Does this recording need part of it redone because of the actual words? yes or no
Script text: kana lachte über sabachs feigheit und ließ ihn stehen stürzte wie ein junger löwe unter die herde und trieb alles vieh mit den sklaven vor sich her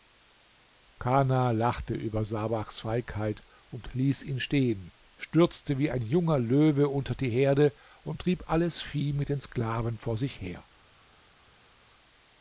no